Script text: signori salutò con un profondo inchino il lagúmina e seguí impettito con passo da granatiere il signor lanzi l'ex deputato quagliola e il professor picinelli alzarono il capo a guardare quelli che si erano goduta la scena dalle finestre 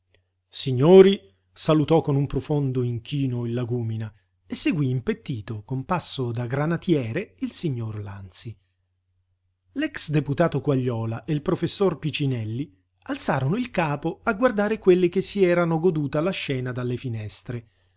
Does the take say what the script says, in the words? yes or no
yes